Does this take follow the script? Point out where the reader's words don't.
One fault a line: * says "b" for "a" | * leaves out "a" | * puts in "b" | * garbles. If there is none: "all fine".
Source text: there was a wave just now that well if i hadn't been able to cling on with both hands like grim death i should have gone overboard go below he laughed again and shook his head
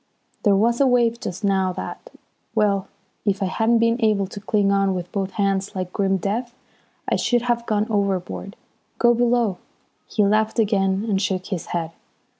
all fine